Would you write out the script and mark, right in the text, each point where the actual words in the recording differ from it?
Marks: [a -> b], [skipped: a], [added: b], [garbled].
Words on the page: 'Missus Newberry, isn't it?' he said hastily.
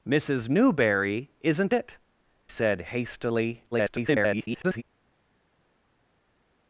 'Missus Newberry, isn't it?' [skipped: he] said hastily. [garbled]